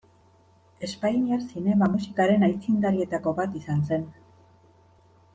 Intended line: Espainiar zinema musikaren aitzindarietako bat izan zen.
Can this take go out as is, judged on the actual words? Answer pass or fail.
pass